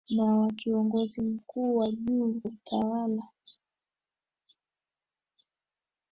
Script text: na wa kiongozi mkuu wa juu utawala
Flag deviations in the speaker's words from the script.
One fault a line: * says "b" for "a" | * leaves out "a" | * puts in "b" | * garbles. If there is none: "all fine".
all fine